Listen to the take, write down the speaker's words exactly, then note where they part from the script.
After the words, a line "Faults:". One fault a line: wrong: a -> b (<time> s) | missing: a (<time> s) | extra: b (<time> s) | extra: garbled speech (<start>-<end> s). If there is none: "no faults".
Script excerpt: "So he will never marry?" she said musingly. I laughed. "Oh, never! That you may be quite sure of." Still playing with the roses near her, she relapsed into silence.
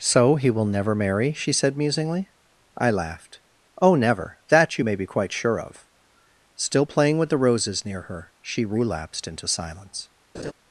"So he will never marry?" she said musingly. I laughed. "Oh, never! That you may be quite sure of." Still playing with the roses near her, she relapsed into silence.
Faults:
no faults